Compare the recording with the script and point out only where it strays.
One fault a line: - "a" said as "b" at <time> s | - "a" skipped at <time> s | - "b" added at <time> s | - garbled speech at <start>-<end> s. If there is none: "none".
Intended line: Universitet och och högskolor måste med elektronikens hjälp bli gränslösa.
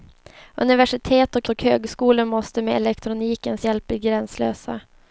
none